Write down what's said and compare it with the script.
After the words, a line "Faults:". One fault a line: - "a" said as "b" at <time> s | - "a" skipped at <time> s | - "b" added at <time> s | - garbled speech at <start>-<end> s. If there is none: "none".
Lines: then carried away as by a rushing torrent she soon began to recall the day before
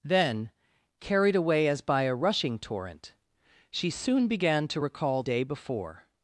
then carried away as by a rushing torrent she soon began to recall day before
Faults:
- "the" skipped at 5.2 s